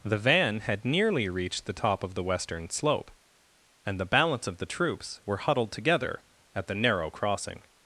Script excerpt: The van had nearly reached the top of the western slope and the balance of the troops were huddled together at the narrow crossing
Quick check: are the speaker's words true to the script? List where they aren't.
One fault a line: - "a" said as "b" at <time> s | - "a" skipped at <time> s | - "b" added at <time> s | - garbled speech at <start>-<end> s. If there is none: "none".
none